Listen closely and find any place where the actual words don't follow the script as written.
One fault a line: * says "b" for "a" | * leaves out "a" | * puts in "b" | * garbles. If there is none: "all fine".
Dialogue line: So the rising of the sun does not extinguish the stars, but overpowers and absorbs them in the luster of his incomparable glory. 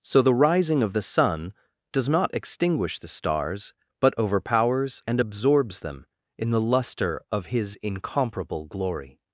all fine